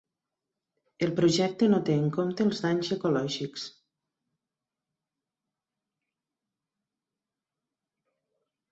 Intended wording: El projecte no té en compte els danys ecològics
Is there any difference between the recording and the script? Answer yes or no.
no